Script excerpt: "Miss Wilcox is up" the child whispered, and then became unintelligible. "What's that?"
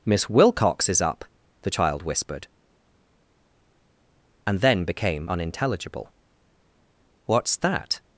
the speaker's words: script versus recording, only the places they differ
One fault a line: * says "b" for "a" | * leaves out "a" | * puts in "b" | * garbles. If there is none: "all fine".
all fine